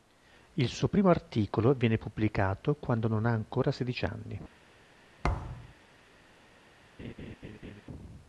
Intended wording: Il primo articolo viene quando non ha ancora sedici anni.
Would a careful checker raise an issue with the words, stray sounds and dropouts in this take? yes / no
yes